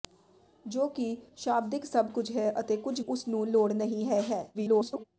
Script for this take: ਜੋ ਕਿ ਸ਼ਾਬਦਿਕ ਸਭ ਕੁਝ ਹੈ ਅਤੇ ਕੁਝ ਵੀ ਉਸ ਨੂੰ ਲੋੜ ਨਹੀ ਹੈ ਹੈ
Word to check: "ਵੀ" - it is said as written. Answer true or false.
false